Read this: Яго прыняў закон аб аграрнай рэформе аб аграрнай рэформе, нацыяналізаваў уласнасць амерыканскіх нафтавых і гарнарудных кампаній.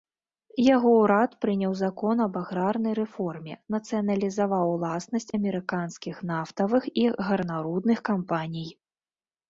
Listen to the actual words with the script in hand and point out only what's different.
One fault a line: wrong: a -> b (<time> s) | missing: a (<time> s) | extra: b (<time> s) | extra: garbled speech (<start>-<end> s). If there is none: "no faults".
extra: ўрад (1.0 s)
missing: аб аграрнай рэформе (3.5 s)